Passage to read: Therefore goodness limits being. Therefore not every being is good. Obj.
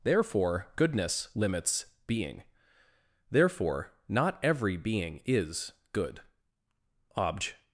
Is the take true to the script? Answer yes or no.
yes